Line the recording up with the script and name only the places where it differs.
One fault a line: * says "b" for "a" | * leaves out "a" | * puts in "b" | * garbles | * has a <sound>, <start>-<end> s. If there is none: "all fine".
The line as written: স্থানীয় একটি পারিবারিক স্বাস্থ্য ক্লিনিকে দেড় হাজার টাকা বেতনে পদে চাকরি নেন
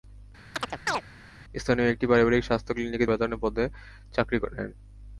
* has a chirp, 0.5-1.0 s
* leaves out "দেড় হাজার টাকা"